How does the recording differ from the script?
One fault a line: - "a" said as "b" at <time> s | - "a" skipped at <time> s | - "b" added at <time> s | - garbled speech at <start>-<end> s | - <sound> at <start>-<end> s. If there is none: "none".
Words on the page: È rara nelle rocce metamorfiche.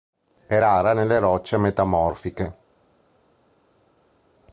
none